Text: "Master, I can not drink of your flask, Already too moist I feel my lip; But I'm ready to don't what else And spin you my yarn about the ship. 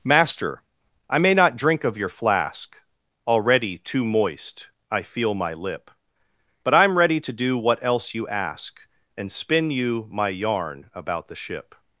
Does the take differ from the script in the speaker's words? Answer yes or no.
yes